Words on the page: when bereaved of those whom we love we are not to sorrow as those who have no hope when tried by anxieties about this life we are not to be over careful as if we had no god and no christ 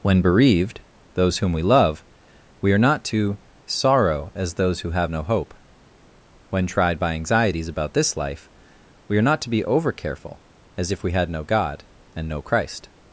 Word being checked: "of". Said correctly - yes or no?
no